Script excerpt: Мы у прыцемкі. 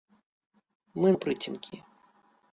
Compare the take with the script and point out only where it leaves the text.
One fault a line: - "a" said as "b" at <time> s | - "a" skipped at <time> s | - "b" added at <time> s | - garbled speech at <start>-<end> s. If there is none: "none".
none